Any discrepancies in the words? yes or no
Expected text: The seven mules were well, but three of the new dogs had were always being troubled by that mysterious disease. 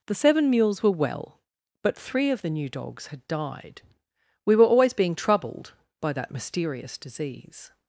yes